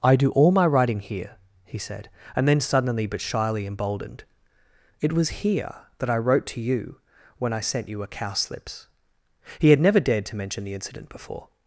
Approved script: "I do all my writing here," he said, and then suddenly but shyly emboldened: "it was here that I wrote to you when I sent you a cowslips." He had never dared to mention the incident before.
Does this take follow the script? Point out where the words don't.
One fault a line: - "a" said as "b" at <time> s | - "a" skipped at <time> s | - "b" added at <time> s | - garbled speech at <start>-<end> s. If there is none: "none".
none